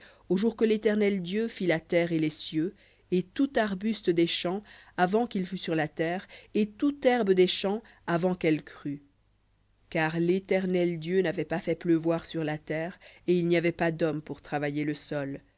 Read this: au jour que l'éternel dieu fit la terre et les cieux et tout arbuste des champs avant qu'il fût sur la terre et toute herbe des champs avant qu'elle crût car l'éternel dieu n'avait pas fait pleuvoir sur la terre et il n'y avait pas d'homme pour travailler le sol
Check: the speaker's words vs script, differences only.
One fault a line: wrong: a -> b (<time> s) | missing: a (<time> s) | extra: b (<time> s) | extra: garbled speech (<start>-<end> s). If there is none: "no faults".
no faults